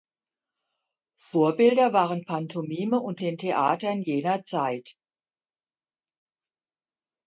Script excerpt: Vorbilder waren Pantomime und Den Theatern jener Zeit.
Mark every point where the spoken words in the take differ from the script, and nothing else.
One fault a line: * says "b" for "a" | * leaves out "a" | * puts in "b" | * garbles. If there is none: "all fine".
all fine